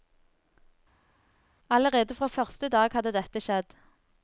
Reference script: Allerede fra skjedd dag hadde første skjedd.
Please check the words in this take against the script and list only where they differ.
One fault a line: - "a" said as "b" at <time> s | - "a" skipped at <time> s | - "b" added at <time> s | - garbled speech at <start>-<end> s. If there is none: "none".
- "skjedd" said as "første" at 2.3 s
- "første" said as "dette" at 3.2 s